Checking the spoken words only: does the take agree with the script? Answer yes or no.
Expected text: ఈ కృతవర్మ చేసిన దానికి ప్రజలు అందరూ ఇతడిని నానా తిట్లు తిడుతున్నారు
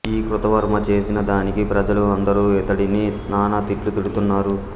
yes